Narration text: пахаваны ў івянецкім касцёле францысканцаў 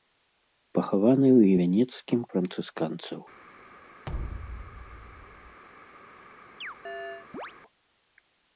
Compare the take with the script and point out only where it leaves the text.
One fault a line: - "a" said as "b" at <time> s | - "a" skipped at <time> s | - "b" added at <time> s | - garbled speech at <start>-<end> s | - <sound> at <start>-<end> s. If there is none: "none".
- "касцёле" skipped at 2.2 s
- thud at 4.1-5.6 s
- chirp at 6.6-7.5 s